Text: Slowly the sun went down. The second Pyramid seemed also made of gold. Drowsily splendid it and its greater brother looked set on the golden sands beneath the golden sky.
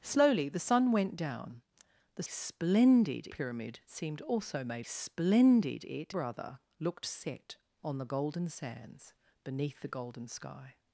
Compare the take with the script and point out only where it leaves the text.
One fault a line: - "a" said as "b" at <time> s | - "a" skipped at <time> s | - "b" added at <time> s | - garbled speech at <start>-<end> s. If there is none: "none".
- "second" said as "splendid" at 2.2 s
- "of gold Drowsily" skipped at 4.9 s
- "and its greater" skipped at 6.1 s